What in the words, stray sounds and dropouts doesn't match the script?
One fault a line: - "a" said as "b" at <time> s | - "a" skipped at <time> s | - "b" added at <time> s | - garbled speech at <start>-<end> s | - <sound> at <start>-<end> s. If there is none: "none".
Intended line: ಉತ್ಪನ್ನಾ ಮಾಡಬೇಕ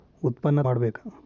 none